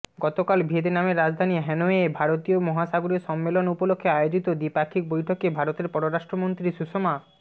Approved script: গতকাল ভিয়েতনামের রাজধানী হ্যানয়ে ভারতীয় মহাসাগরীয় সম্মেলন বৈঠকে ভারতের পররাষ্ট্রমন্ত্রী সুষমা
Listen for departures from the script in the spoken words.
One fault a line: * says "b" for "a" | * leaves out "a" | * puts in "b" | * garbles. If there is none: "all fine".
* puts in "উপলক্ষে আয়োজিত দ্বিপাক্ষিক"